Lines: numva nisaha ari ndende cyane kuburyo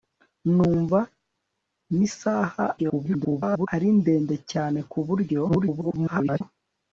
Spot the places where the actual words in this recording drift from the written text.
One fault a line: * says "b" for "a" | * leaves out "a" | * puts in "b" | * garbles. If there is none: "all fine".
* garbles
* garbles